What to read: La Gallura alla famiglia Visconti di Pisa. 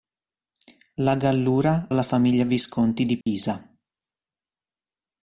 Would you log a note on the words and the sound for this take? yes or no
yes